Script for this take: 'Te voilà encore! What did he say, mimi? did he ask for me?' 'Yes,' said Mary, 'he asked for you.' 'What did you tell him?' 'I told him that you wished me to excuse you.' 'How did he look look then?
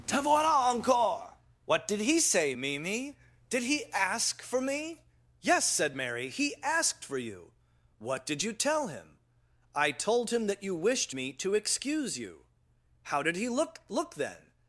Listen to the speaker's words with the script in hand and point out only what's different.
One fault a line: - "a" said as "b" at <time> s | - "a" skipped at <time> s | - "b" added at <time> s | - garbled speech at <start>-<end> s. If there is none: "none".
none